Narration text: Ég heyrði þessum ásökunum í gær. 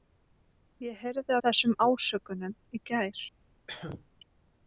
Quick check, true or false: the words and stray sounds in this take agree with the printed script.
false